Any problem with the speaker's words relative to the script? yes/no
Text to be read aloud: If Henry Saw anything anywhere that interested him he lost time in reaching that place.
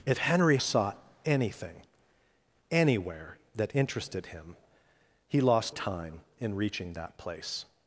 no